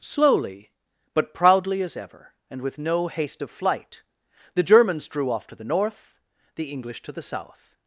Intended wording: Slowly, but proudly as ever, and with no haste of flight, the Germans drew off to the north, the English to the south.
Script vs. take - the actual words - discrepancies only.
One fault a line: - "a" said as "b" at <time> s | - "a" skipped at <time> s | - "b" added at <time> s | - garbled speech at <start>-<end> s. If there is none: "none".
none